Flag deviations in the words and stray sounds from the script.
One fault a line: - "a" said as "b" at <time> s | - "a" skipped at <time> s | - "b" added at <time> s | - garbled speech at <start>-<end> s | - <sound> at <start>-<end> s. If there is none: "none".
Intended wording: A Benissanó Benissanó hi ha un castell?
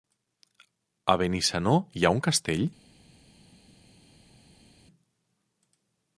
- "Benissanó" skipped at 1.8 s